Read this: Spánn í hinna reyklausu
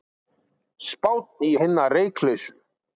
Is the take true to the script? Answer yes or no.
yes